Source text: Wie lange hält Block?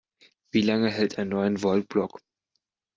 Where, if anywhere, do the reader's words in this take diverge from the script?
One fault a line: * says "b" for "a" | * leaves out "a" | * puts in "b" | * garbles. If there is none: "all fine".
* puts in "ein Neun Volt"